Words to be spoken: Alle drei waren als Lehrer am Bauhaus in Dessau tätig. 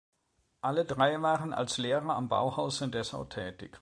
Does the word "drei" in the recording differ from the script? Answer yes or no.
no